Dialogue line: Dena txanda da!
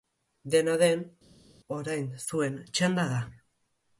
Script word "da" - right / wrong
right